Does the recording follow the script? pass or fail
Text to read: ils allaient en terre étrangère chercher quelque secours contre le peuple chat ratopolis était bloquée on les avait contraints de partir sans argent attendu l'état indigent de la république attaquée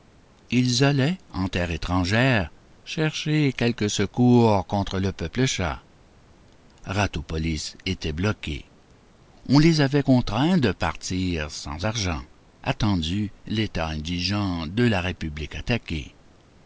pass